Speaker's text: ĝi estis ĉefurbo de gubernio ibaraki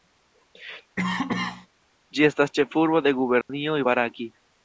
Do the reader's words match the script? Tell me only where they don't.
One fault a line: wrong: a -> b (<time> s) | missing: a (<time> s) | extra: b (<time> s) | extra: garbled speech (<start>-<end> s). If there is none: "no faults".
wrong: estis -> estas (2.3 s)